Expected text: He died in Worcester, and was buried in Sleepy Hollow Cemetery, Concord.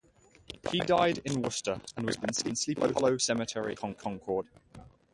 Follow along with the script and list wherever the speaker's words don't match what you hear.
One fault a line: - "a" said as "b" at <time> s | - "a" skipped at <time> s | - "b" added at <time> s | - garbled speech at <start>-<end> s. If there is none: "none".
none